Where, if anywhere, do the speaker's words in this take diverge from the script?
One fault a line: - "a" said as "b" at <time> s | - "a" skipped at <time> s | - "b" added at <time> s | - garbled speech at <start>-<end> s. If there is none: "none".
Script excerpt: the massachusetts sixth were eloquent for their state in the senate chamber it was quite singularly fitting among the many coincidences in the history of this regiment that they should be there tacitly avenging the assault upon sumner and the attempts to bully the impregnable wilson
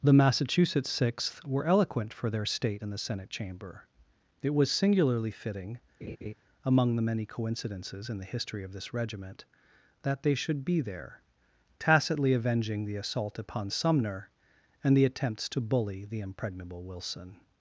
- "quite" skipped at 4.7 s